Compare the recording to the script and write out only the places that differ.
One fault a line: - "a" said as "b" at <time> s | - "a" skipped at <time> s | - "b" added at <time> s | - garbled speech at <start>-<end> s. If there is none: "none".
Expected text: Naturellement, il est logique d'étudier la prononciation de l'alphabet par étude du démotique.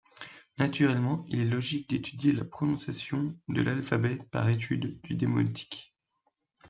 none